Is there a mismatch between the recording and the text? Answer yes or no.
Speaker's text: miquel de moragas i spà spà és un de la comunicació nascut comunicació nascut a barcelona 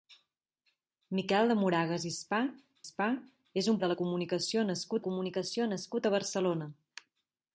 no